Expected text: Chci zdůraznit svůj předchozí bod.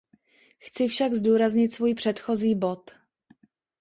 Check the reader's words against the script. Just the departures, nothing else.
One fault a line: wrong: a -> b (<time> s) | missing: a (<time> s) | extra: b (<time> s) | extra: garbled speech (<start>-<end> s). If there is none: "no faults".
extra: však (0.9 s)